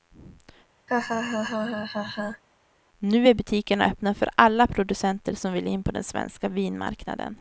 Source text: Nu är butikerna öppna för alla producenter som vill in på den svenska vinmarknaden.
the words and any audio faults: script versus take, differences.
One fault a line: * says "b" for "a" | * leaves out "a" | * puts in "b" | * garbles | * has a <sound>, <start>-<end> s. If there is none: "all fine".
* has a laugh, 0.9-2.4 s